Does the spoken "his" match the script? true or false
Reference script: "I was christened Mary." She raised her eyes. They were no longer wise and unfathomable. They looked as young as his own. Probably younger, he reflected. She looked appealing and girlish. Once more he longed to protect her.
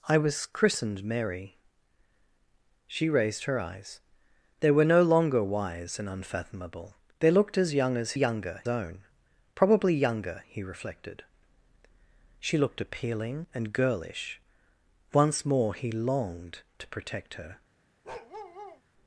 false